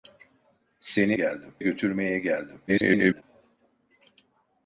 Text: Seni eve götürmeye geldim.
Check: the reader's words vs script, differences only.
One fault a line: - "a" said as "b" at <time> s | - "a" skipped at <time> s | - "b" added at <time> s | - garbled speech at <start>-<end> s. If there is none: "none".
- "eve" said as "geldim" at 1.1 s
- garbled speech at 2.7-3.2 s